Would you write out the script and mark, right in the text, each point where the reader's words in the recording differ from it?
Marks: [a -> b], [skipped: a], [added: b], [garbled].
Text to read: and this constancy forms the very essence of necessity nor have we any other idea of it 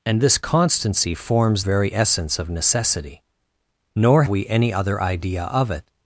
and this constancy forms [skipped: the] very essence of necessity nor [skipped: have] we any other idea of it